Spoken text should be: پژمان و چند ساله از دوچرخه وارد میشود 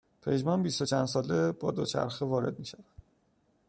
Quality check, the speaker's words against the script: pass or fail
fail